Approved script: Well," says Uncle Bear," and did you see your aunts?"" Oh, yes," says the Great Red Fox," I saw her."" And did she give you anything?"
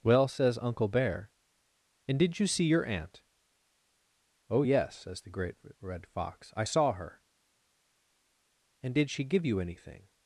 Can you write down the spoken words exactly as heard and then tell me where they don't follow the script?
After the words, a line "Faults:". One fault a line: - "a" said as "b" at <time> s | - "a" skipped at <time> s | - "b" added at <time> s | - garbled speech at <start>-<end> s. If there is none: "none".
Well," says Uncle Bear," and did you see your aunt?"" Oh, yes," says the Great Red Fox," I saw her."" And did she give you anything?"
Faults:
- "aunts" said as "aunt" at 2.9 s